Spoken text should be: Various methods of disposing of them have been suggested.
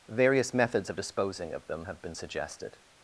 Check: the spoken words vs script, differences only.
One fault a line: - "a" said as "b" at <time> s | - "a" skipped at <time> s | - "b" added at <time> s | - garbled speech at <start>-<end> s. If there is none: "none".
none